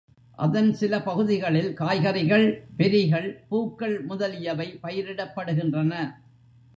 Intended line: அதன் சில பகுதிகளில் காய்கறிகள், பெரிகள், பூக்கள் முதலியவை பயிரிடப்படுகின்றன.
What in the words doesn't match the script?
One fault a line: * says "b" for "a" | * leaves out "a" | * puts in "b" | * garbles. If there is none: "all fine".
all fine